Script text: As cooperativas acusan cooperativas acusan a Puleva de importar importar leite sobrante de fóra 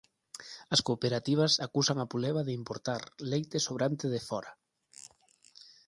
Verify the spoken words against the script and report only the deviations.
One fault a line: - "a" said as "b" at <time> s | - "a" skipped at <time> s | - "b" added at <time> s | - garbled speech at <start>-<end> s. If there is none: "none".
- "cooperativas acusan" skipped at 2.0 s
- "importar" skipped at 3.0 s